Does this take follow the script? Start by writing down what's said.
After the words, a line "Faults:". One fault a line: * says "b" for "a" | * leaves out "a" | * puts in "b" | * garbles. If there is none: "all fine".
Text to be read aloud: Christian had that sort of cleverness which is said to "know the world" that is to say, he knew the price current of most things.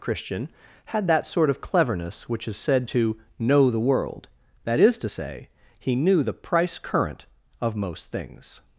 Christian had that sort of cleverness which is said to "know the world" that is to say, he knew the price current of most things.
Faults:
all fine